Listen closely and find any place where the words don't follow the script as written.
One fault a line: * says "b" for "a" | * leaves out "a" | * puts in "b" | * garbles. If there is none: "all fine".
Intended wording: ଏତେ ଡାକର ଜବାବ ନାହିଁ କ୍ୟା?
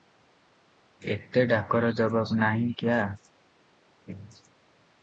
all fine